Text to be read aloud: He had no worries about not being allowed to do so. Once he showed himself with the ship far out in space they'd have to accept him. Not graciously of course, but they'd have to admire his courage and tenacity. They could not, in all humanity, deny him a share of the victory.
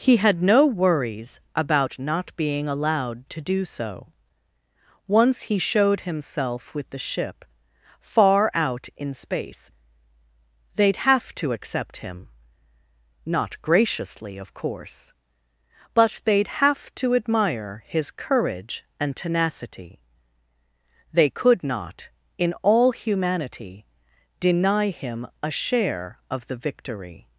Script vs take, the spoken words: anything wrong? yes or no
no